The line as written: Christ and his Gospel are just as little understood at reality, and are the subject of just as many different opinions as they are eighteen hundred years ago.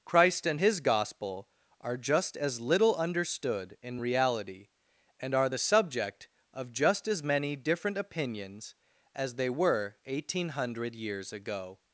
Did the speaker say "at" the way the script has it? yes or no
no